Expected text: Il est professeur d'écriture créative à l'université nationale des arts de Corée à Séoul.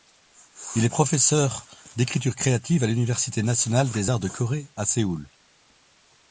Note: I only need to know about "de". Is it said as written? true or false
true